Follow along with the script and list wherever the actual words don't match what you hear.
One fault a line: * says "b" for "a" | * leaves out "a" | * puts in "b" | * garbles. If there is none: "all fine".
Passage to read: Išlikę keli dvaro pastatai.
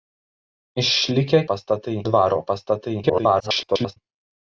* says "pastatai" for "keli"
* garbles